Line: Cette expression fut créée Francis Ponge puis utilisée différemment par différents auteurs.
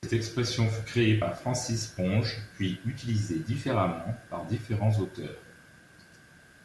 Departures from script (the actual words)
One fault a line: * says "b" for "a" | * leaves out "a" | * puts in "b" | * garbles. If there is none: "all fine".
* puts in "par"